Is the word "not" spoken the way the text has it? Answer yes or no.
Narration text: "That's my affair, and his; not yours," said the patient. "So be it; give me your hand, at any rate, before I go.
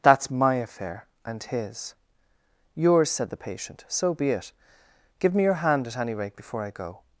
no